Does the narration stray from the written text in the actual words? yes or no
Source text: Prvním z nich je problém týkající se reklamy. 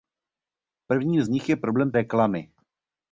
yes